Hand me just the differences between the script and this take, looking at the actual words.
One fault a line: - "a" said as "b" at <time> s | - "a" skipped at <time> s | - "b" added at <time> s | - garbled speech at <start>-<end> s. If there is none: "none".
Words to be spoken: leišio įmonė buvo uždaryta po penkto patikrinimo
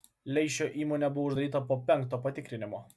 none